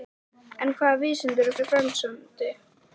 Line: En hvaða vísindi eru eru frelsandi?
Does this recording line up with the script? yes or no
yes